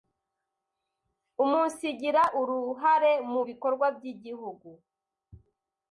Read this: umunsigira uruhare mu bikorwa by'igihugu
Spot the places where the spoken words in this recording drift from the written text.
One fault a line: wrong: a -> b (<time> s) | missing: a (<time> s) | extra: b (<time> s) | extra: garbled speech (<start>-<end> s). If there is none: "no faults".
no faults